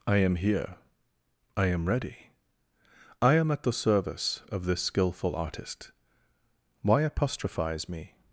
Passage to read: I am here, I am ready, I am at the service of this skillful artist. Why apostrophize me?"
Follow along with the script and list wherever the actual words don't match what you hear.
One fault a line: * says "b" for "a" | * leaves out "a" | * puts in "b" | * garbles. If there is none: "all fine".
all fine